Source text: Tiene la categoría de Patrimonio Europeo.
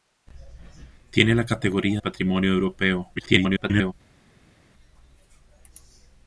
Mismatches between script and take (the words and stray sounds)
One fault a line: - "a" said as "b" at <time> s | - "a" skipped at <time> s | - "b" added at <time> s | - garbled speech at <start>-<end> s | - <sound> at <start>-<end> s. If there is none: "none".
- "de" skipped at 2.0 s
- garbled speech at 3.2-3.9 s